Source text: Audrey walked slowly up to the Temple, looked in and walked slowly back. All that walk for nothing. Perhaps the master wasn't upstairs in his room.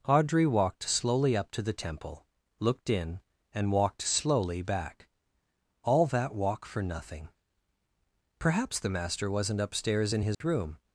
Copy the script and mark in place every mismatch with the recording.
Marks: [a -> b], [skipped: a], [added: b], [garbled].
Audrey walked slowly up to the Temple, looked in and walked slowly back. All that walk for nothing. Perhaps the master wasn't upstairs in his room.